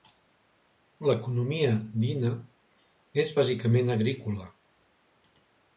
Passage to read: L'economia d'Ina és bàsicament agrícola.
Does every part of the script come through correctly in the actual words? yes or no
yes